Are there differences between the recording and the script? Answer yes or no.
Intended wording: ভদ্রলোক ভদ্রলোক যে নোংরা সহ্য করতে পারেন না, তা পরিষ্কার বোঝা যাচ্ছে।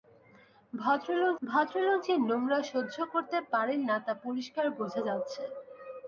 no